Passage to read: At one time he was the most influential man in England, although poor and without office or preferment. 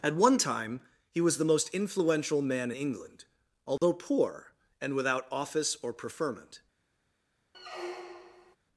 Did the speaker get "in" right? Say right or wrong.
wrong